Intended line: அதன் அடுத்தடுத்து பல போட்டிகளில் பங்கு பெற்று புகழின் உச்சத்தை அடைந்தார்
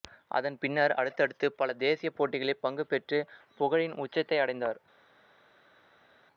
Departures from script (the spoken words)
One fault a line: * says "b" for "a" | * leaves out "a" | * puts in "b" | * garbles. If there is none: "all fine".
* puts in "பின்னர்"
* puts in "தேசிய"